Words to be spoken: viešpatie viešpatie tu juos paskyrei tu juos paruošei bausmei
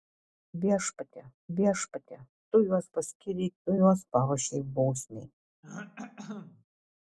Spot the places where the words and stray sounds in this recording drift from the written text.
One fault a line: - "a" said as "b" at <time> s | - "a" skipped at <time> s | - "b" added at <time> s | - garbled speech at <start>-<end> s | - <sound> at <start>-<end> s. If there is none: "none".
- throat clearing at 5.6-6.6 s